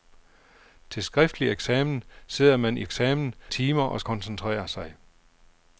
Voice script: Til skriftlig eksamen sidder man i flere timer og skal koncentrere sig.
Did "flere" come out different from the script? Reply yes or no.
yes